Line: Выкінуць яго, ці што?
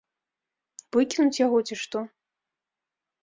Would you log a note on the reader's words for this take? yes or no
no